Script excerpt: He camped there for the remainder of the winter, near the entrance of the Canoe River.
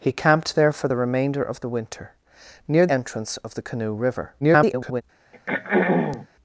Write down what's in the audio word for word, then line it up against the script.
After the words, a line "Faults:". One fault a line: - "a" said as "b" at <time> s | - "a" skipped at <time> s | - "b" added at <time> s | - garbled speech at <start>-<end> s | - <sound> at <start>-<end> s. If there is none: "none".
He camped there for the remainder of the winter, near entrance of the Canoe River. [garbled]
Faults:
- "the" skipped at 2.9 s
- garbled speech at 4.4-5.0 s
- throat clearing at 5.3-6.3 s